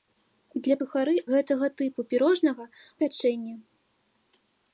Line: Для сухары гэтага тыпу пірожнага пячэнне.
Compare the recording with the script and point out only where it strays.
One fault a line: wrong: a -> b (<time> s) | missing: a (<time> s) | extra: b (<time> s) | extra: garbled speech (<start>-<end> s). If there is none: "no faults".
no faults